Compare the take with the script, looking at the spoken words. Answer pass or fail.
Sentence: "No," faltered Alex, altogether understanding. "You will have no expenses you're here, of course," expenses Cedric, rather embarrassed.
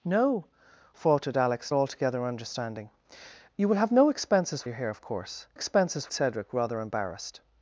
pass